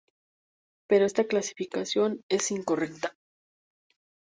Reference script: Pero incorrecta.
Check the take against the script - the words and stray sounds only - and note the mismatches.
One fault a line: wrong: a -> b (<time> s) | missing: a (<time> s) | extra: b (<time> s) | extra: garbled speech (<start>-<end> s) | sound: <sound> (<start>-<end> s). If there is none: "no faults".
extra: esta clasificación es (1.0 s)